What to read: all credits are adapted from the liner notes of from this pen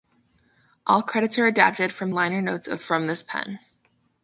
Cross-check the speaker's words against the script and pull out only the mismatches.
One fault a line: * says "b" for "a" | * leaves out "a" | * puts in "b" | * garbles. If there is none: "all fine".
* leaves out "the"